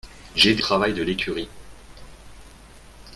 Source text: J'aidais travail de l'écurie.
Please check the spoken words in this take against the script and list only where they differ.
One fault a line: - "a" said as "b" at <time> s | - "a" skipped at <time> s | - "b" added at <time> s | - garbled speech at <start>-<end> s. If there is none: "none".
none